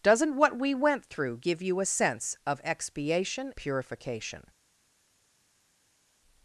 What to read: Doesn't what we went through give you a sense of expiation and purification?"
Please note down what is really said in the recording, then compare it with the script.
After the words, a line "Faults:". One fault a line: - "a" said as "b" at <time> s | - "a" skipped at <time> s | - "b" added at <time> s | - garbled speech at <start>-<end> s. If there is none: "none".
Doesn't what we went through give you a sense of expiation purification?"
Faults:
- "and" skipped at 3.5 s